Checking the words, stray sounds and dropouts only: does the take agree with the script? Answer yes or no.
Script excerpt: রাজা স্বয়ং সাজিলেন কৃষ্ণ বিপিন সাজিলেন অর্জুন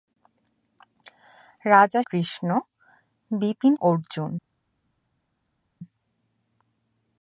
no